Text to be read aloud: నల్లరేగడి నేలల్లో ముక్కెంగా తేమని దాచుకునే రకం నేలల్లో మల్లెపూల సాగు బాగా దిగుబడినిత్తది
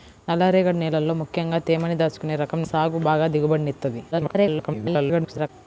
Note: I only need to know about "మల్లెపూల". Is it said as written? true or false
false